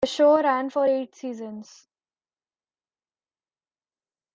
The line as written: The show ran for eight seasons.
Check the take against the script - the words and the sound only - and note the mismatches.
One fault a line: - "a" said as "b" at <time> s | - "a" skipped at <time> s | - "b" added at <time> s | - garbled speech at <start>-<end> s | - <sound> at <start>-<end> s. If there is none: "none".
none